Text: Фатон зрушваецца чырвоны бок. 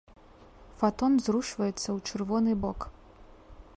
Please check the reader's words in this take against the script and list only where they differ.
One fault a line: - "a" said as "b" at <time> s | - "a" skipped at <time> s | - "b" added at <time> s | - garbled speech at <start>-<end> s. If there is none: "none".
- "ў" added at 1.9 s